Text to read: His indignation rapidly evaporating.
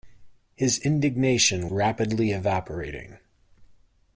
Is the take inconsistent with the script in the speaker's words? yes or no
no